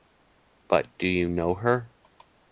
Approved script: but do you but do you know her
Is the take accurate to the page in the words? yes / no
no